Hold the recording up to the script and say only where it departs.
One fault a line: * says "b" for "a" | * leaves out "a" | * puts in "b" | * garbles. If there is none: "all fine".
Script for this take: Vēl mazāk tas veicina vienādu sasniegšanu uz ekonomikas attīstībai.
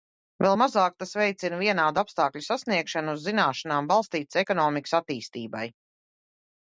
* puts in "apstākļu"
* puts in "zināšanām balstītas"